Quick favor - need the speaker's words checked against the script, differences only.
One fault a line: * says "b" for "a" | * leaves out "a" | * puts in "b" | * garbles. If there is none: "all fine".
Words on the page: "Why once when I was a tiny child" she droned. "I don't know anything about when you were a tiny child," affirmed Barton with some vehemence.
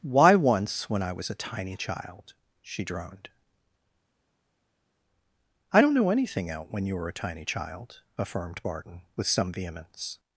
* says "out" for "about"